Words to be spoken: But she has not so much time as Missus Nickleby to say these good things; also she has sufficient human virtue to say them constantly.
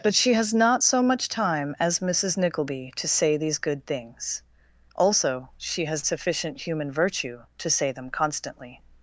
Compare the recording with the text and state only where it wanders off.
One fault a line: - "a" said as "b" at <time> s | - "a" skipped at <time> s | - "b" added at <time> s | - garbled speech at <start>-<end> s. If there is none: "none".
none